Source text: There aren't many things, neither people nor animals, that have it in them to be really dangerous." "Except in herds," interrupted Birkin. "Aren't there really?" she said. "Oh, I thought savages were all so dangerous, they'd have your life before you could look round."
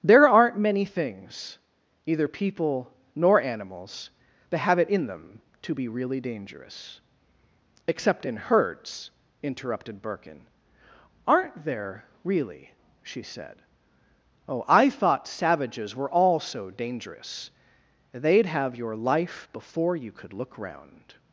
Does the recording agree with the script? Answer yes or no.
no